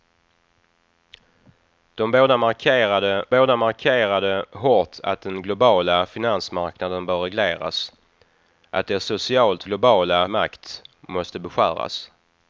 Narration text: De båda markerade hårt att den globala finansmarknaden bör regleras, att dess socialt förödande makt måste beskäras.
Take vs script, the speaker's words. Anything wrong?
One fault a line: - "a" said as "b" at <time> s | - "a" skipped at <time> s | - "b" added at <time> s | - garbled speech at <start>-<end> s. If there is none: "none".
- "båda markerade" added at 3.3 s
- "förödande" said as "globala" at 9.6 s